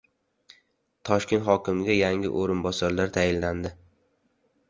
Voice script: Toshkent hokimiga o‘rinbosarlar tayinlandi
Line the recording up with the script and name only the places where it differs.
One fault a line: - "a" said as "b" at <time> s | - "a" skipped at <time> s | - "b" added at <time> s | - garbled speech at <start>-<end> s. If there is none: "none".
- "yangi" added at 2.0 s